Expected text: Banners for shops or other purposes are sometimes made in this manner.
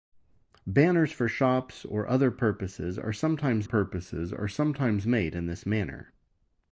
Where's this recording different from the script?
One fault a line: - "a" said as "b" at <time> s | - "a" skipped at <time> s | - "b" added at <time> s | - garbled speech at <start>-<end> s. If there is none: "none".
- "purposes are sometimes" added at 3.6 s